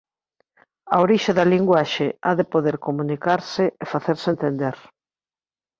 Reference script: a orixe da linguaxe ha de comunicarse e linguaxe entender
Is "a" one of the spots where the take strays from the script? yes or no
no